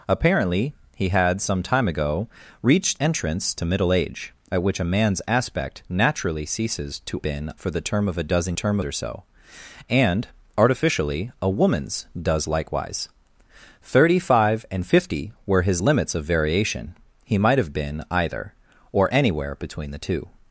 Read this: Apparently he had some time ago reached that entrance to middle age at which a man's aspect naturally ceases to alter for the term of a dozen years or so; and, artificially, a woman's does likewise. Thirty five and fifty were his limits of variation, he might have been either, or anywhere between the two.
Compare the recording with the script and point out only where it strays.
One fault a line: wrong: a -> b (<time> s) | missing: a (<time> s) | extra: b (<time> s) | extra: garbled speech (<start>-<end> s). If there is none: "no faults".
missing: that (3.0 s)
wrong: alter -> been (7.2 s)
wrong: years -> term (8.5 s)